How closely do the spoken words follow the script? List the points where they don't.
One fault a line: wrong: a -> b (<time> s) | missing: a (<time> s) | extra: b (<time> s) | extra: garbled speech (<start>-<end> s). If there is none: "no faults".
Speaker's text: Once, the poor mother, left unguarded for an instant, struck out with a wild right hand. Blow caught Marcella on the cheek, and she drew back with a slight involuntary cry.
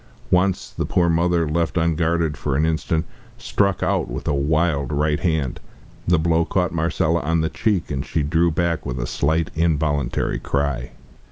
extra: The (6.1 s)